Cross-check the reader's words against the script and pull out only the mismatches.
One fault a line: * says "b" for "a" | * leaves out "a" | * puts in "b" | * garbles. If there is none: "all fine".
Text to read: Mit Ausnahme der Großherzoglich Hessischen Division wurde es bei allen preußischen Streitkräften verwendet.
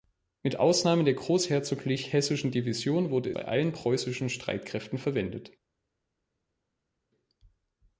* leaves out "es"